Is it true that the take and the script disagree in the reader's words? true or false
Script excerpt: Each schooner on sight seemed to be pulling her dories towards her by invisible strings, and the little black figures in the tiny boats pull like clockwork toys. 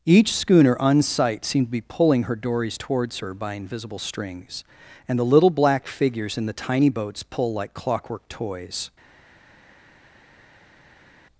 false